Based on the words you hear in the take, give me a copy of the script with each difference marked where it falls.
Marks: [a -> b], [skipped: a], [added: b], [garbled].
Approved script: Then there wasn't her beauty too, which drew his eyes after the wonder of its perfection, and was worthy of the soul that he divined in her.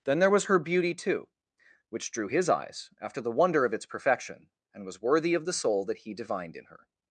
Then there [wasn't -> was] her beauty too, which drew his eyes after the wonder of its perfection, and was worthy of the soul that he divined in her.